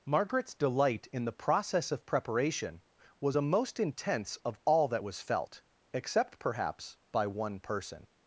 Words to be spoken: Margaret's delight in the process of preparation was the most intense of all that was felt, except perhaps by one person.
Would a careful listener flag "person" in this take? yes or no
no